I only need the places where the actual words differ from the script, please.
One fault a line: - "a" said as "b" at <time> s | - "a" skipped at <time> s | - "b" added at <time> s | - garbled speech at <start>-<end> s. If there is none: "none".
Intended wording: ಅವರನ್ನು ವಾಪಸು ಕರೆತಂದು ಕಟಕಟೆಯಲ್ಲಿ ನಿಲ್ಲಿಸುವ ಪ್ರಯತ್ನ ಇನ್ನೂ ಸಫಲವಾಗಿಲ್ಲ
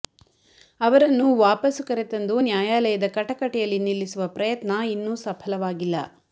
- "ನ್ಯಾಯಾಲಯದ" added at 2.4 s